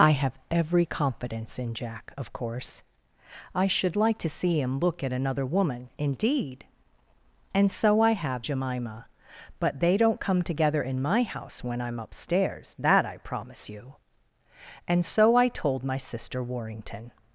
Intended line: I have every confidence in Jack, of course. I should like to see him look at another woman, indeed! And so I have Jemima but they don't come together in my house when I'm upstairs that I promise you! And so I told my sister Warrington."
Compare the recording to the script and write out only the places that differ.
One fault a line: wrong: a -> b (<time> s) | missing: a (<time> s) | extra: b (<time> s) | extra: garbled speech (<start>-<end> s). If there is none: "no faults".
no faults